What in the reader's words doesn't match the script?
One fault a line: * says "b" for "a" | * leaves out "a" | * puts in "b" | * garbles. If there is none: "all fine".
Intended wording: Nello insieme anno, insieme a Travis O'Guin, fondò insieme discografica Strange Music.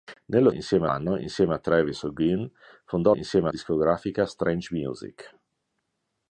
all fine